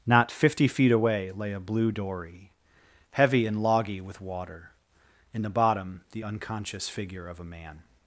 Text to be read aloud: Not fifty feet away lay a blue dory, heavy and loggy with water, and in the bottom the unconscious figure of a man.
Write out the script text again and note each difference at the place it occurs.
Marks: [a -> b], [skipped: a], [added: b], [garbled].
Not fifty feet away lay a blue dory, heavy and loggy with water, [skipped: and] in the bottom the unconscious figure of a man.